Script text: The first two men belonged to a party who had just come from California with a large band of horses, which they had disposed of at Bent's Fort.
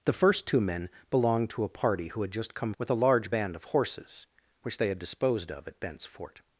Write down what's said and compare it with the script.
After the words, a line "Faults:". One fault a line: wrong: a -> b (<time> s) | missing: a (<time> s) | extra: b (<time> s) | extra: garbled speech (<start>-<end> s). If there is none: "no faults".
The first two men belonged to a party who had just come with a large band of horses, which they had disposed of at Bent's Fort.
Faults:
missing: from California (2.7 s)